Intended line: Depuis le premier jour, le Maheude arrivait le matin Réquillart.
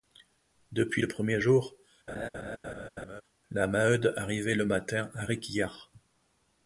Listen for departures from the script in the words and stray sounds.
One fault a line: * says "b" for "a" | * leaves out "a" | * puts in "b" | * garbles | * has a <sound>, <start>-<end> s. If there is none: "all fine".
* has a laugh, 2.1-3.2 s
* says "la" for "le"
* puts in "à"